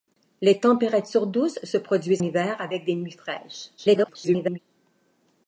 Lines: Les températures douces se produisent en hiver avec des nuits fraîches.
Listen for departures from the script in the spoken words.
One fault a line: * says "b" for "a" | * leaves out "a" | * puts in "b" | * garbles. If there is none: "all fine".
* leaves out "en"
* garbles